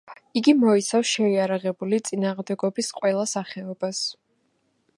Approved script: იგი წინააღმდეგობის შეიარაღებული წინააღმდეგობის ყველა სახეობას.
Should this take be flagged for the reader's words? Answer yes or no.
yes